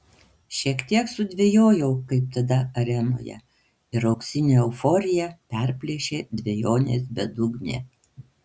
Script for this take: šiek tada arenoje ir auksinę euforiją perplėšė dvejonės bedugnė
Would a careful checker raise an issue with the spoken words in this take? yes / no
yes